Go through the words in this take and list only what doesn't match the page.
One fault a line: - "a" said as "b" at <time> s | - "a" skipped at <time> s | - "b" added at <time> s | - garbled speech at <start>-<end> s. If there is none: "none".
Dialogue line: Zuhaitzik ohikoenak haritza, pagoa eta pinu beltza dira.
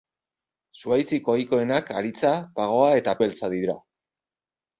- "pinu" skipped at 3.2 s